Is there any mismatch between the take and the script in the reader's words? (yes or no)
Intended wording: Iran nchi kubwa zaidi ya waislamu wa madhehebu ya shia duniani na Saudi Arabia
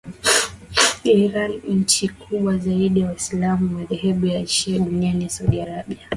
no